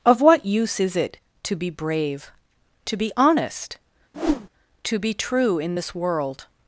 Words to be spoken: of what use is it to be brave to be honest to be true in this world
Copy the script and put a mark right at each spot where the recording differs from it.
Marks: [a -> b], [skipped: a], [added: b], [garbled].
of what use is it to be brave to be honest to be true in this world